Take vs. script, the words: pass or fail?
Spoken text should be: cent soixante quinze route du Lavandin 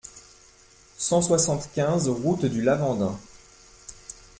pass